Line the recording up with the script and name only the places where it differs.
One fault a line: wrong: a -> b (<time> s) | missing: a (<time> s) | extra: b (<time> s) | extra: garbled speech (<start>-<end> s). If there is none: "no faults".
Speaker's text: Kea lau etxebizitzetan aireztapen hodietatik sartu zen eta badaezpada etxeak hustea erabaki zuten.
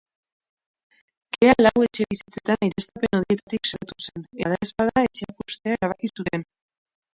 missing: eta (4.2 s)